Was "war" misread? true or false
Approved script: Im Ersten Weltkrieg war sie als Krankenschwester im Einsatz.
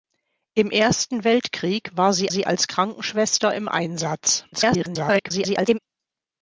false